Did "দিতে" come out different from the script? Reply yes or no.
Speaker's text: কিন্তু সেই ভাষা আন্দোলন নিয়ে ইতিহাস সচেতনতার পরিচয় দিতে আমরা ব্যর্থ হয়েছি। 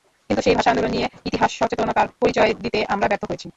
no